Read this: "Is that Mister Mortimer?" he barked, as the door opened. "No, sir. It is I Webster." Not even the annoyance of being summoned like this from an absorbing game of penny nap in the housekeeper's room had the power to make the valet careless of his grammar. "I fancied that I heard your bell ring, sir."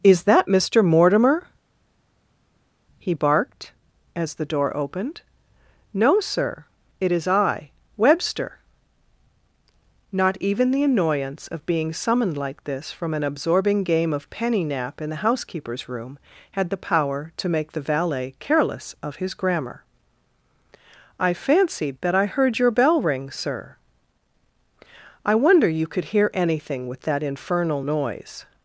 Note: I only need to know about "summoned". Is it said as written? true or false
true